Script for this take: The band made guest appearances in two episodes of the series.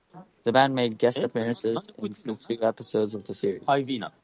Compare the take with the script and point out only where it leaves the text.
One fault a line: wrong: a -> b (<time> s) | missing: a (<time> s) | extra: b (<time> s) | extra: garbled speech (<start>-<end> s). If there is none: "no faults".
no faults